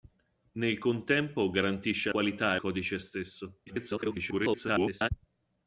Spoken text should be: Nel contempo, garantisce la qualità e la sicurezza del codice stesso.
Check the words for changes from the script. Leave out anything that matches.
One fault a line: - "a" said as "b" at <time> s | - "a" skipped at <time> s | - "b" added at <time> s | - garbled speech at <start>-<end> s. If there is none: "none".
- "la" skipped at 2.1 s
- "la sicurezza del" skipped at 2.6 s
- garbled speech at 3.7-5.1 s